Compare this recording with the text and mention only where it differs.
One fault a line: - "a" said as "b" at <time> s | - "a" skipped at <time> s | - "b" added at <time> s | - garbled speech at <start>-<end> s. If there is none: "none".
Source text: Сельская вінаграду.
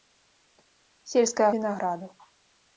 none